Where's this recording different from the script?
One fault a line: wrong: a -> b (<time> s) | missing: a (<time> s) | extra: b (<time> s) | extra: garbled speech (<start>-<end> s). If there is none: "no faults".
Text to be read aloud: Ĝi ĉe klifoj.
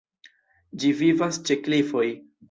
extra: vivas (1.0 s)